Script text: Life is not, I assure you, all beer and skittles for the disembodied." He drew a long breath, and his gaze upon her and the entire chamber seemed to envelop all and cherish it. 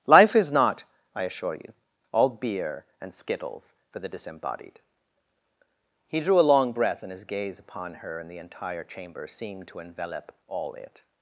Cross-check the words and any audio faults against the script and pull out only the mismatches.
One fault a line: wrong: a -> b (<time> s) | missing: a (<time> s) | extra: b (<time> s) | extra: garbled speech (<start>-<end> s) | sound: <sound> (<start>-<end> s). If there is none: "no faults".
missing: and cherish (10.7 s)